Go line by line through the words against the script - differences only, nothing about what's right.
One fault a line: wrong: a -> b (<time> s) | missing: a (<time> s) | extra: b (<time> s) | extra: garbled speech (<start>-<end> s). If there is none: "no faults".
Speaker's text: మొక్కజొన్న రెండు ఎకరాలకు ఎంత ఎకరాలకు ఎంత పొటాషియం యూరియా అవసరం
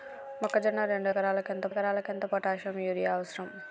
no faults